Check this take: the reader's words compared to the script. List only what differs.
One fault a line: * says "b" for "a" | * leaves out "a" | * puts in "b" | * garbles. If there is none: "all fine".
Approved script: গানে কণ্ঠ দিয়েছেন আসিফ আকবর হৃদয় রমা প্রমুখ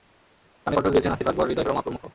all fine